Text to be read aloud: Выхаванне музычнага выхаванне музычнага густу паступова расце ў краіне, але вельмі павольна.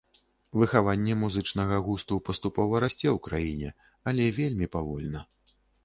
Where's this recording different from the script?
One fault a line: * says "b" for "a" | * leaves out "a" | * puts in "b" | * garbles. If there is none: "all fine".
* leaves out "выхаванне музычнага"